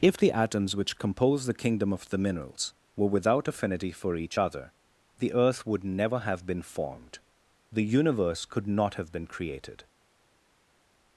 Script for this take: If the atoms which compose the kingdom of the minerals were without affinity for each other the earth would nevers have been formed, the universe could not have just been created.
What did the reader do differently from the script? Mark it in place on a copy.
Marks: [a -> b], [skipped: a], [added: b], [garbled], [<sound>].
If the atoms which compose the kingdom of the minerals were without affinity for each other the earth would [nevers -> never] have been formed, the universe could not have [skipped: just] been created.